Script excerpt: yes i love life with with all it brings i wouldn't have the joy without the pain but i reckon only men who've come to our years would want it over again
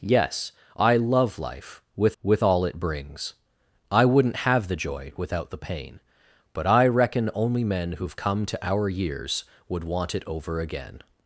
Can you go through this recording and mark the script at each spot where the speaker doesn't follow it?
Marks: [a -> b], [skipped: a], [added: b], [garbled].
yes i love life with with all it brings i wouldn't have the joy without the pain but i reckon only men who've come to our years would want it over again